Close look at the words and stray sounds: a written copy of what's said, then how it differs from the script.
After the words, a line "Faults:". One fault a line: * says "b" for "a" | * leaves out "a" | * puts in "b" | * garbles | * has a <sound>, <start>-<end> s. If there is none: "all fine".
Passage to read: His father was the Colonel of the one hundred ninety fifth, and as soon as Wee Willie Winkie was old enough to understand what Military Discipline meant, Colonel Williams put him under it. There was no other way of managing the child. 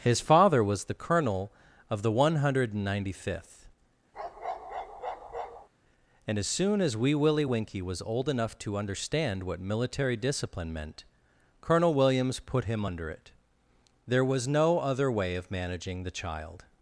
His father was the Colonel of the one hundred ninety fifth, and as soon as Wee Willie Winkie was old enough to understand what Military Discipline meant, Colonel Williams put him under it. There was no other way of managing the child.
Faults:
* has a bark, 4.1-5.7 s